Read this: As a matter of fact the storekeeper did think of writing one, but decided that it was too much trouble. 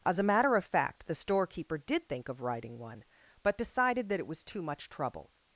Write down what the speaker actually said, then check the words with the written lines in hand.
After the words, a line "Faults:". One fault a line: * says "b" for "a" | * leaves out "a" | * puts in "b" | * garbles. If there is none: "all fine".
As a matter of fact the storekeeper did think of writing one, but decided that it was too much trouble.
Faults:
all fine